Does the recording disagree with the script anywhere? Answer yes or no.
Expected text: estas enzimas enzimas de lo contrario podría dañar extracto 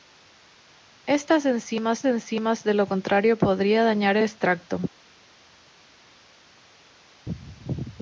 no